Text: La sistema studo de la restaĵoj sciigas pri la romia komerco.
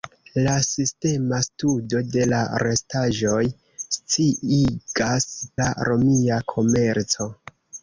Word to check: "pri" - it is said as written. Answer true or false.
false